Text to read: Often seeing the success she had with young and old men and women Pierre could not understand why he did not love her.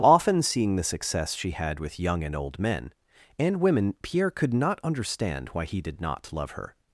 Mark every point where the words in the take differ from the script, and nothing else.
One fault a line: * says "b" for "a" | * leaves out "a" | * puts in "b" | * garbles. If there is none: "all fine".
all fine